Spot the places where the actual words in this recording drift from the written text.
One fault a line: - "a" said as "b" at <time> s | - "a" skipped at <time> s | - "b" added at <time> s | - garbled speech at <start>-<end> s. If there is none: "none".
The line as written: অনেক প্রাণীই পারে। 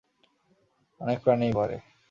none